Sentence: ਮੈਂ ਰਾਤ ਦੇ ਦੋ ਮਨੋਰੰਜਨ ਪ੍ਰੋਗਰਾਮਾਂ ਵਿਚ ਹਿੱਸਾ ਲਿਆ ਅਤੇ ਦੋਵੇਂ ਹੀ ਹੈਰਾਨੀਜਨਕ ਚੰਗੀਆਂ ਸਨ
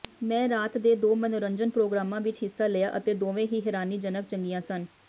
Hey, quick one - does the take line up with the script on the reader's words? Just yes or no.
yes